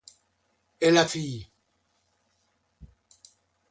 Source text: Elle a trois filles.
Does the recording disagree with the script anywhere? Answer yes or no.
yes